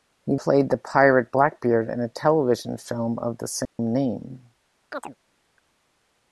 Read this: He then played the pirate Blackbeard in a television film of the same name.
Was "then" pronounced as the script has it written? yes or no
no